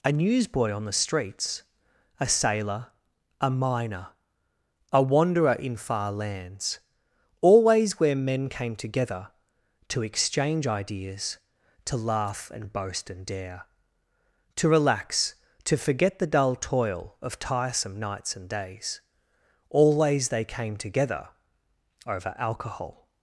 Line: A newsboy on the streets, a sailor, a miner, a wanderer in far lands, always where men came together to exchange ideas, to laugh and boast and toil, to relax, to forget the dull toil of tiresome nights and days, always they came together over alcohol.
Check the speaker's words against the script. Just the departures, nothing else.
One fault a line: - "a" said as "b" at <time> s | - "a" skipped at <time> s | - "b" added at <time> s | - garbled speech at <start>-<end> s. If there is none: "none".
- "toil" said as "dare" at 13.3 s